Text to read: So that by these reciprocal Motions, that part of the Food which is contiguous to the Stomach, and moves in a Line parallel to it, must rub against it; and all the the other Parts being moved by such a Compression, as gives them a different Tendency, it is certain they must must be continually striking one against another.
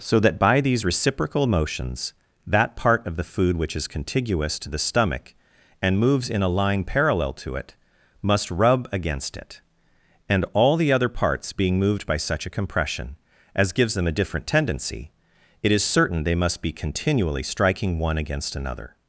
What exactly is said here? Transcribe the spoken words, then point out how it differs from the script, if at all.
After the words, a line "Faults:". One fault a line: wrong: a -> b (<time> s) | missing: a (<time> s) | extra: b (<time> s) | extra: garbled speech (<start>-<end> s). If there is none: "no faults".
So that by these reciprocal Motions, that part of the Food which is contiguous to the Stomach, and moves in a Line parallel to it, must rub against it; and all the other Parts being moved by such a Compression, as gives them a different Tendency, it is certain they must be continually striking one against another.
Faults:
missing: the (10.9 s)
missing: must (16.6 s)